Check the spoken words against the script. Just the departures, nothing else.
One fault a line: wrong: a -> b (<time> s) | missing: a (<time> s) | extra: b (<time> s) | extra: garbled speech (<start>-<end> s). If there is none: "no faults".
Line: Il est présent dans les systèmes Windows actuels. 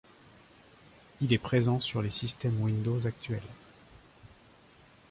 wrong: dans -> sur (1.8 s)